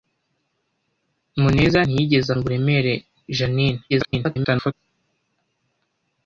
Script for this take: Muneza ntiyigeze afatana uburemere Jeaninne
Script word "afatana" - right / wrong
wrong